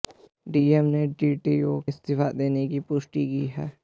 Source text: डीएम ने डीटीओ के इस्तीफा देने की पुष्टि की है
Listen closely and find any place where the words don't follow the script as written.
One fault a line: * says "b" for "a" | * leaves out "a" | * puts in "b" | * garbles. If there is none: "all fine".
* leaves out "के"